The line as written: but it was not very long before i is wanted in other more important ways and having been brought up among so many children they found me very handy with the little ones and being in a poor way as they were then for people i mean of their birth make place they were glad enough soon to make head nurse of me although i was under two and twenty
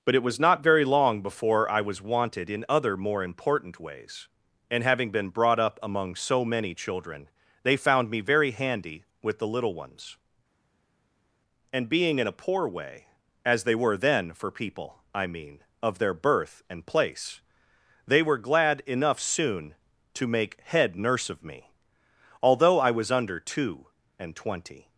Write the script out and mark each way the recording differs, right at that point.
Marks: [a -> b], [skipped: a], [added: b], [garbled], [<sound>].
but it was not very long before i [is -> was] wanted in other more important ways and having been brought up among so many children they found me very handy with the little ones and being in a poor way as they were then for people i mean of their birth [make -> and] place they were glad enough soon to make head nurse of me although i was under two and twenty